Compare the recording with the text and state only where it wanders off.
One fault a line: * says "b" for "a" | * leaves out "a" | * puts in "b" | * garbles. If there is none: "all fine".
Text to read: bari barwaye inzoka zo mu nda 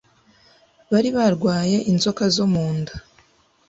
all fine